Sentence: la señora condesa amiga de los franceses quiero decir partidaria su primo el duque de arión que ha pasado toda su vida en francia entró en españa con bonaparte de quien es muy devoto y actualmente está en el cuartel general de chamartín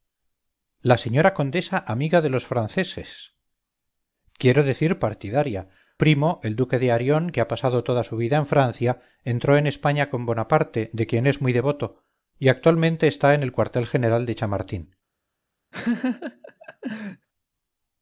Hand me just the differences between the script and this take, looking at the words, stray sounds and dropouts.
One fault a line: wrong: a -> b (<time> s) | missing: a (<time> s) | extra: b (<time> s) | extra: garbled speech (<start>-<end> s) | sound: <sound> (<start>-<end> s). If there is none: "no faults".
missing: su (5.7 s)
sound: laugh (15.7-17.3 s)